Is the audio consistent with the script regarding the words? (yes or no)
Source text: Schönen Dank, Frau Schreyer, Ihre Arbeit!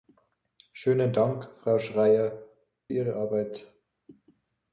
yes